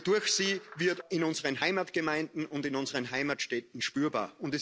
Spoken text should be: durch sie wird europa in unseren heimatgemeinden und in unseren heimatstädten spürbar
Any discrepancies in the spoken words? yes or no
yes